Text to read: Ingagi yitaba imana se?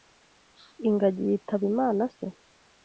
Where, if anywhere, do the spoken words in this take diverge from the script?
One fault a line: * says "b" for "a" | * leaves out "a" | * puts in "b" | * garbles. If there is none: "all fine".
all fine